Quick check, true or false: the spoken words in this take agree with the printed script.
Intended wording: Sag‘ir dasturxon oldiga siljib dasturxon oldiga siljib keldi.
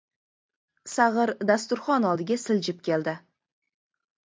false